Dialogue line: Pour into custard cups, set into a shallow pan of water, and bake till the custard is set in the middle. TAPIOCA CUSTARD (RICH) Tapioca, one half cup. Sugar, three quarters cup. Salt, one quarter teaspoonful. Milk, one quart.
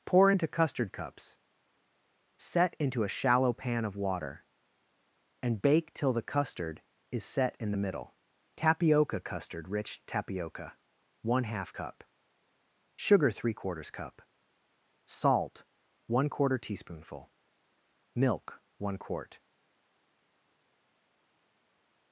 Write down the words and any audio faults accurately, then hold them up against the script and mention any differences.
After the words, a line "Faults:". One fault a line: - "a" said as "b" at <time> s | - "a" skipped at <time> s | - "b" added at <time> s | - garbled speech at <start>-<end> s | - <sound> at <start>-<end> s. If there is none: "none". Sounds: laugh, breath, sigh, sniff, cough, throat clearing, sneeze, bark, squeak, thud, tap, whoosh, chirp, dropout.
Pour into custard cups, set into a shallow pan of water, and bake till the custard is set in the middle. TAPIOCA CUSTARD (RICH) Tapioca, one half cup. Sugar, three quarters cup. Salt, one quarter teaspoonful. Milk, one quart.
Faults:
none